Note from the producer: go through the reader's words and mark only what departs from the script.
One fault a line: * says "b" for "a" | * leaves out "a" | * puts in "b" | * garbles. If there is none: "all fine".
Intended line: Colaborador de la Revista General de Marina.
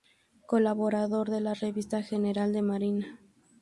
all fine